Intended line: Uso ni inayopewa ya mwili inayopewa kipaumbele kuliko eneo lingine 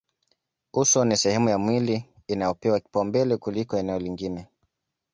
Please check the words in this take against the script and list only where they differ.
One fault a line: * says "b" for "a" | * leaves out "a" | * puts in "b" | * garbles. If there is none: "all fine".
* says "sehemu" for "inayopewa"